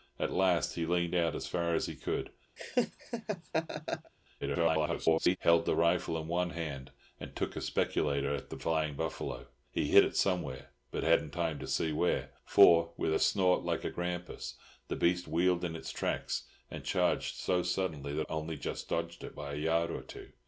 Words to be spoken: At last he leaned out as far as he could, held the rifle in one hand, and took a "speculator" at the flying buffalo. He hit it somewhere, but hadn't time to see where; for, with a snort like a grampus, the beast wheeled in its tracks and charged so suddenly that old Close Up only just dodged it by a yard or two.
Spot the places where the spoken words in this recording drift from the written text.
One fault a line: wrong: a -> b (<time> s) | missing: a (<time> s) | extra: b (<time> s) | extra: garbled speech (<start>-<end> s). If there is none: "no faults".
extra: garbled speech (4.4-5.4 s)
missing: old Close Up (18.3 s)